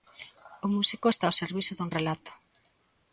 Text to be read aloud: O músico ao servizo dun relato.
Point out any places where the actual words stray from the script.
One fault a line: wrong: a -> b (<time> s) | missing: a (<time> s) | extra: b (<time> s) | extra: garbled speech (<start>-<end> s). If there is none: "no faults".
extra: está (1.1 s)